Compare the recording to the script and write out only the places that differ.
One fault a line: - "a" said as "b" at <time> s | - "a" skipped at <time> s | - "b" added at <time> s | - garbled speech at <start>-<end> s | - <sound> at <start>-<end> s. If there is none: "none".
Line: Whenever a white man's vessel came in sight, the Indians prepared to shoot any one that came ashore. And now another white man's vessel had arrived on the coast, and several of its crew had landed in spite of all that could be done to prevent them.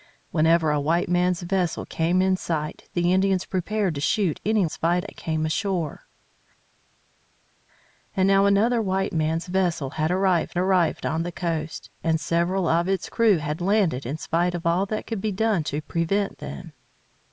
- "one" said as "spite" at 4.7 s
- "arrived" added at 10.6 s